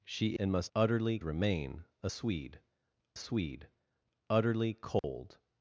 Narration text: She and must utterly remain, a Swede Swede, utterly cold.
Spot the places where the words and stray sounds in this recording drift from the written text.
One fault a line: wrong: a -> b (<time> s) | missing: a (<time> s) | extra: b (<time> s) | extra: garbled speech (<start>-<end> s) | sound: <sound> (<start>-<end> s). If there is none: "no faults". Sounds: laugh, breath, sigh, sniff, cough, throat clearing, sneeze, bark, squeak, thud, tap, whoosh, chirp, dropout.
sound: dropout (5.0-5.0 s)